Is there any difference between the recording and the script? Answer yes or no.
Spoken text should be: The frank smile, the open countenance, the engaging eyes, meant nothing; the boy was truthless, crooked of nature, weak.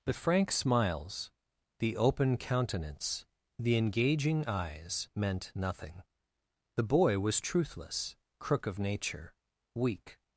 yes